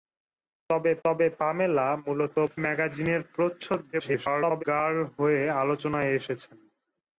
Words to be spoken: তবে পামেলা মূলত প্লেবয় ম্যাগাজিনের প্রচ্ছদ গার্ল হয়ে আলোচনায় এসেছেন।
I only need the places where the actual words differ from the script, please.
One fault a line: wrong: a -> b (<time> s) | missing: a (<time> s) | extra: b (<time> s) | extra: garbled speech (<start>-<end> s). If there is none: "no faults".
extra: তবে (1.0 s)
missing: প্লেবয় (2.3 s)
extra: garbled speech (3.9-4.6 s)